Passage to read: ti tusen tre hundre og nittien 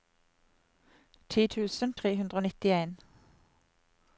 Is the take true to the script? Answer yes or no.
yes